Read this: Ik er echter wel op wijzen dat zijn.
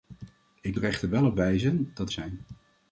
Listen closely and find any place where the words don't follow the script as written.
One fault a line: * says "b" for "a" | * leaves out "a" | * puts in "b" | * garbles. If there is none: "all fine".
all fine